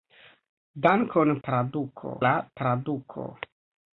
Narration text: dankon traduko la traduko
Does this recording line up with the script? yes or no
yes